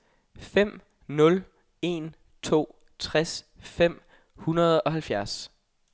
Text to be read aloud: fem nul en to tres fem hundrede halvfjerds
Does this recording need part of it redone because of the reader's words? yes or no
yes